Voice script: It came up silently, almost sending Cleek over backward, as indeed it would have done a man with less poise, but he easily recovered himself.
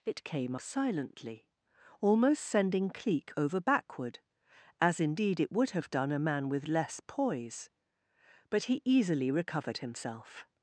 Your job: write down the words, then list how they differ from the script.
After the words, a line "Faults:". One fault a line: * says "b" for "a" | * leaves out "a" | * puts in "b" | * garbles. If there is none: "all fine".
It came silently, almost sending Cleek over backward, as indeed it would have done a man with less poise, but he easily recovered himself.
Faults:
* leaves out "up"